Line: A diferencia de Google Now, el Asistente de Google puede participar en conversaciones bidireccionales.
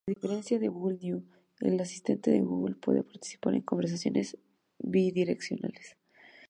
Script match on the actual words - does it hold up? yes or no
yes